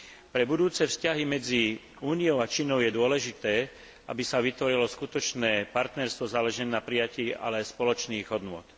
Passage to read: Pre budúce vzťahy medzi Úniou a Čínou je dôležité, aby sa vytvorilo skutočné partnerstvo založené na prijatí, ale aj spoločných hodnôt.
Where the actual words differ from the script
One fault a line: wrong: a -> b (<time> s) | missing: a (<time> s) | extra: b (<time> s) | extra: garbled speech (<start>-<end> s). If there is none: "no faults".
no faults